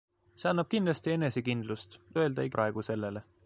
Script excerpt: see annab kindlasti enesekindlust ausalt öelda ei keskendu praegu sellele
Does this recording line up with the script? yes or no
no